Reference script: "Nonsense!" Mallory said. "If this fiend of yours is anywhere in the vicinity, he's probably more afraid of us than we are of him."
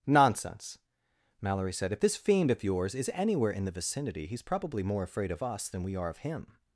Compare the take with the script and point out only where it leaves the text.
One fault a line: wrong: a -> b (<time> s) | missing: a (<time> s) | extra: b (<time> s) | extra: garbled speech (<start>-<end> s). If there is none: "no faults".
no faults